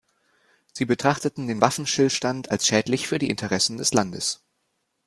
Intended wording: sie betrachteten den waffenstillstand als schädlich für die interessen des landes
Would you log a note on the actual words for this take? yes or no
no